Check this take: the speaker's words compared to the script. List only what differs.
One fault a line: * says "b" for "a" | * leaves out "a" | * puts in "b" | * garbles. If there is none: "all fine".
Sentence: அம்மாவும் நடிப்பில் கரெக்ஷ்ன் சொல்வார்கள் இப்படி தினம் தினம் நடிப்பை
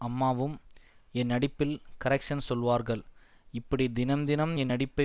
* puts in "என்"
* puts in "என்"